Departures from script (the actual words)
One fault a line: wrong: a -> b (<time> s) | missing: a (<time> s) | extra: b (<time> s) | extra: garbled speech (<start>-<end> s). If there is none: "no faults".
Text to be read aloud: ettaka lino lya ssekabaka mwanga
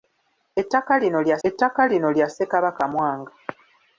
extra: ettaka lino lya (1.5 s)